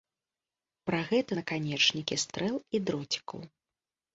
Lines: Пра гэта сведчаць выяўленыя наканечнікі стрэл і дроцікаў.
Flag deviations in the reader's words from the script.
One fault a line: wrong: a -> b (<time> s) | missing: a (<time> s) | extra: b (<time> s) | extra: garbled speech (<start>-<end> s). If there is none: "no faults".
missing: сведчаць выяўленыя (1.3 s)